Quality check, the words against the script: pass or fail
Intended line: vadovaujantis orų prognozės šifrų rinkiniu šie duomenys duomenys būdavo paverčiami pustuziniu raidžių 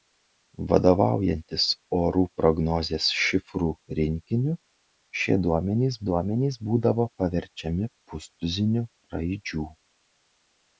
pass